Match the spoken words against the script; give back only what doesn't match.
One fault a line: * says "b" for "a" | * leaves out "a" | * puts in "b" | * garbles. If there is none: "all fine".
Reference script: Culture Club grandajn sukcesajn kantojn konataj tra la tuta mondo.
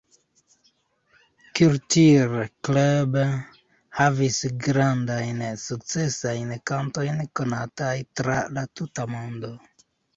* puts in "havis"